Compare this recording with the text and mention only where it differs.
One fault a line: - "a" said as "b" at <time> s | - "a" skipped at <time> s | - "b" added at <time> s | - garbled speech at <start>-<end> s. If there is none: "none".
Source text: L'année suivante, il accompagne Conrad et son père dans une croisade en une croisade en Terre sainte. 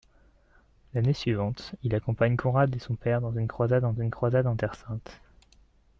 none